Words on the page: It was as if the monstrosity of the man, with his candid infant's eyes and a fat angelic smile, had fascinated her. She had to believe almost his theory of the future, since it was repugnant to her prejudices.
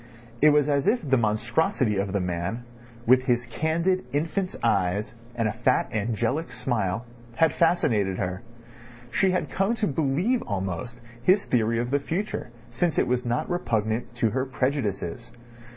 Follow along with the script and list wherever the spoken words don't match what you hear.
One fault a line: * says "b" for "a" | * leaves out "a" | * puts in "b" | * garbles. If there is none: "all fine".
* puts in "come"
* puts in "not"